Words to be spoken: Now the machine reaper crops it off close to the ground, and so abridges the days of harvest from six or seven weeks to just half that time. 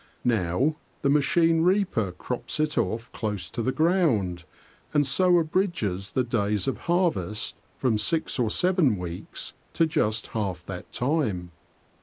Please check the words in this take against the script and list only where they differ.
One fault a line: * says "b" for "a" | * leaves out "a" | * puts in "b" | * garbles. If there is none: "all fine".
all fine